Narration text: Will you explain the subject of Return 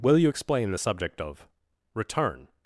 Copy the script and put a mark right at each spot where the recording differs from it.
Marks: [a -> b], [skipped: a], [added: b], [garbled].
Will you explain the subject of Return